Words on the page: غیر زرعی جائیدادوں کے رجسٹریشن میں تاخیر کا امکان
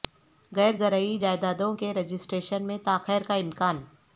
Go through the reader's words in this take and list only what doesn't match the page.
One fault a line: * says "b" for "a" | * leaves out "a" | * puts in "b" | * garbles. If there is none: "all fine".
all fine